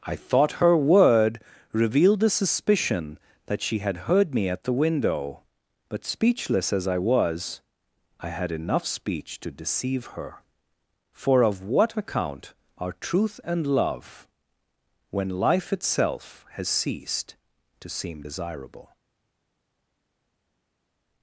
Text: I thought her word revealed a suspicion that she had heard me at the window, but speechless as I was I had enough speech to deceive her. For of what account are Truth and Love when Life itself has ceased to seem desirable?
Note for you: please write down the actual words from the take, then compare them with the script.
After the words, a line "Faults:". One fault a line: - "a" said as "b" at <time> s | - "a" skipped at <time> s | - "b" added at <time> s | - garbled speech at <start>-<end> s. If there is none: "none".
I thought her word revealed a suspicion that she had heard me at the window, but speechless as I was I had enough speech to deceive her. For of what account are Truth and Love when Life itself has ceased to seem desirable?
Faults:
none